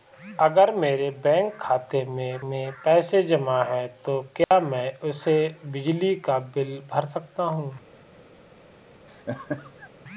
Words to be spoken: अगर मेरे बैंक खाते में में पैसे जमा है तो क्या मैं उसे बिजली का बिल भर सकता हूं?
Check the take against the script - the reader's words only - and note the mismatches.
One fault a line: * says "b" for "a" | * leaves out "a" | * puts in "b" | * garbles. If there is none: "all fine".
all fine